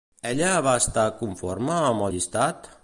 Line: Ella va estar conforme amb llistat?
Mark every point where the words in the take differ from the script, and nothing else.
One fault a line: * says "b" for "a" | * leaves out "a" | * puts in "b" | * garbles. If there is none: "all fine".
all fine